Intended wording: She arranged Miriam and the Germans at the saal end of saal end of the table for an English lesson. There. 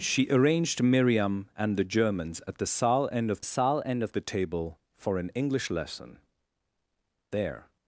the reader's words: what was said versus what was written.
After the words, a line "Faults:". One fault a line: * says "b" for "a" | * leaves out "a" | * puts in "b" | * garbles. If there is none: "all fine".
She arranged Miriam and the Germans at the saal end of saal end of the table for an English lesson. There.
Faults:
all fine